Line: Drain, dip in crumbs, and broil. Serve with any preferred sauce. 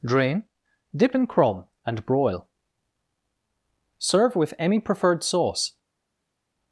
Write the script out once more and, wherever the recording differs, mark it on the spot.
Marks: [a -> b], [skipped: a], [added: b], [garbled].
Drain, dip in [crumbs, -> crumb] and broil. Serve with any preferred sauce.